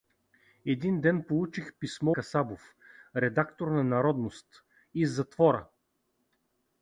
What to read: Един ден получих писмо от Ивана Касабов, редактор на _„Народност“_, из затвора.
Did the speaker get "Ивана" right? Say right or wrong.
wrong